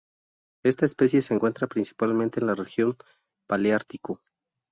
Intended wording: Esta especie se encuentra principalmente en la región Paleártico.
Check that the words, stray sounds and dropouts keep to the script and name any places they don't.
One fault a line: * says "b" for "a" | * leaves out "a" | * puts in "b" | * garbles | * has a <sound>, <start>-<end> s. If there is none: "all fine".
all fine